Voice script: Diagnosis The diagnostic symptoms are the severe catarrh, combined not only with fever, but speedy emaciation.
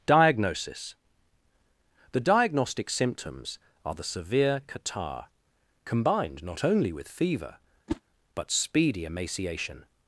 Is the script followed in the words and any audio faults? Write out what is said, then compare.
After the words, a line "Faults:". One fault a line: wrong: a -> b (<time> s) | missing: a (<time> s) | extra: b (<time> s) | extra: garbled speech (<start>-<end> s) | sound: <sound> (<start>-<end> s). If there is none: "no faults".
Diagnosis The diagnostic symptoms are the severe catarrh, combined not only with fever, but speedy emaciation.
Faults:
sound: whoosh (7.9-8.0 s)